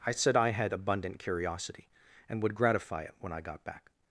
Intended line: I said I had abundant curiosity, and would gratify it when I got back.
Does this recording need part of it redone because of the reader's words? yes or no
no